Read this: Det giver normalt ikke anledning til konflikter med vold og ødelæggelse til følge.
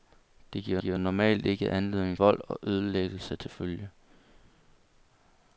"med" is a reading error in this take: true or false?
true